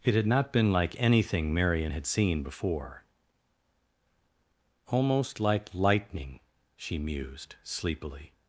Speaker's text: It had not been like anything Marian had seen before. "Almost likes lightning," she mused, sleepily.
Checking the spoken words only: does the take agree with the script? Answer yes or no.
no